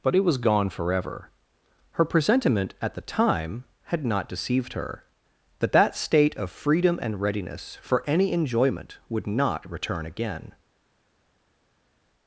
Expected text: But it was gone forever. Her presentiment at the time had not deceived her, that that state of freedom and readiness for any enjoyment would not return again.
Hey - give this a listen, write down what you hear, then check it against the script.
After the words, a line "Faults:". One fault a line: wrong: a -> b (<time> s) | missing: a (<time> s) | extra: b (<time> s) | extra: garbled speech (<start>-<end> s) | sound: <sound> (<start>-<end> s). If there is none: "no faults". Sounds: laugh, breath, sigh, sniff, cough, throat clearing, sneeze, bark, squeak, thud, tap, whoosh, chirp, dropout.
But it was gone forever. Her presentiment at the time had not deceived her, that that state of freedom and readiness for any enjoyment would not return again.
Faults:
no faults